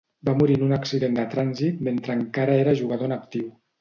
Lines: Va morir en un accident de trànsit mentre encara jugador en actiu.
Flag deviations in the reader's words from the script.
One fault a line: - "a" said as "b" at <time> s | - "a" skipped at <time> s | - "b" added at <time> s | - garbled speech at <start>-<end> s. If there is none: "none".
- "era" added at 2.6 s